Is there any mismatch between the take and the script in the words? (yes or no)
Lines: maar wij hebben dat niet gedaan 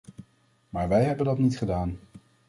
no